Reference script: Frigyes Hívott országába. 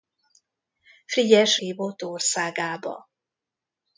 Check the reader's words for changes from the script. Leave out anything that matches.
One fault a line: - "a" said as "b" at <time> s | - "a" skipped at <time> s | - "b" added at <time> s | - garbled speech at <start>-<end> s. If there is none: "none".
none